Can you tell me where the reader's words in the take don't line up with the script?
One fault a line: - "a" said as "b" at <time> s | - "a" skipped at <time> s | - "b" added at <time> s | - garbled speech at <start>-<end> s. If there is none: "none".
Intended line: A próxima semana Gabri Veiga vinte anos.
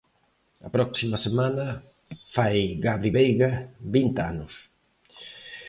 - "fai" added at 2.3 s